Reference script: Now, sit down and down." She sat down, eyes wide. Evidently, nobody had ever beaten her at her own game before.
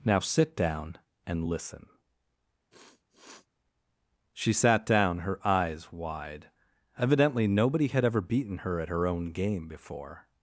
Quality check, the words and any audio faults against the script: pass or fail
fail